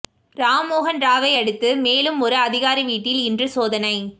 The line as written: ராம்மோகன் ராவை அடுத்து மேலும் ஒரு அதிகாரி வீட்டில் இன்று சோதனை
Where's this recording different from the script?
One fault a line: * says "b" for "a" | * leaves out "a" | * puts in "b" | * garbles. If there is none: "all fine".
all fine